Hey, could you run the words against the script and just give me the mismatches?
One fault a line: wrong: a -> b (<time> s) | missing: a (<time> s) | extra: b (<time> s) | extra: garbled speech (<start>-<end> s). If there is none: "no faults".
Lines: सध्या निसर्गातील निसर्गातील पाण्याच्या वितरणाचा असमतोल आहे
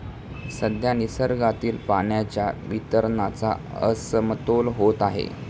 missing: निसर्गातील (1.8 s)
extra: होत (4.8 s)